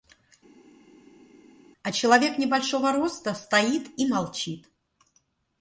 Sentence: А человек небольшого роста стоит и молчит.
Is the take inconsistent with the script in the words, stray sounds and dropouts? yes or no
no